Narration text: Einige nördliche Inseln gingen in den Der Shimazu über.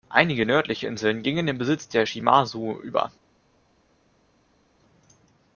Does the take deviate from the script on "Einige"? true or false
false